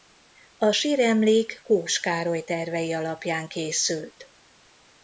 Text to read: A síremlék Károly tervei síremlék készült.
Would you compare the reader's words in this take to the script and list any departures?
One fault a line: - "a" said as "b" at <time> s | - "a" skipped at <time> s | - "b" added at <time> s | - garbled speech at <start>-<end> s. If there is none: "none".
- "Kós" added at 1.6 s
- "síremlék" said as "alapján" at 2.9 s